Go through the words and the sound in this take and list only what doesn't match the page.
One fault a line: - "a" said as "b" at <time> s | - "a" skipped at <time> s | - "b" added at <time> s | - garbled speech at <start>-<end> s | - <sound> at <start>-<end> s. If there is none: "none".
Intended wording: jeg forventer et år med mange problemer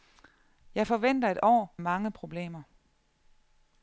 - "med" skipped at 1.8 s